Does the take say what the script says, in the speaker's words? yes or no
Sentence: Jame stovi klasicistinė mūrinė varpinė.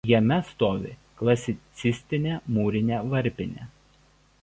yes